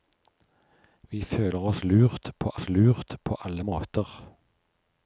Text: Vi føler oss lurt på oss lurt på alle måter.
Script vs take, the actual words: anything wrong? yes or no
no